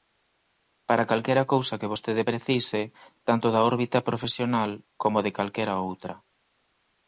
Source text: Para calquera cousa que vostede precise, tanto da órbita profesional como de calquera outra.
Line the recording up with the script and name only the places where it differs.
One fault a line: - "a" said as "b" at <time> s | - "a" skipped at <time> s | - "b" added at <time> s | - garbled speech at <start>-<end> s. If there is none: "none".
none